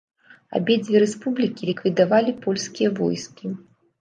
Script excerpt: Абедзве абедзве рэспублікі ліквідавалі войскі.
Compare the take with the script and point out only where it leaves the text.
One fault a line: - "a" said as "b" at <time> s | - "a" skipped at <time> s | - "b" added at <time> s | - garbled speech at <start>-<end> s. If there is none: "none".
- "абедзве" skipped at 1.0 s
- "польскія" added at 2.4 s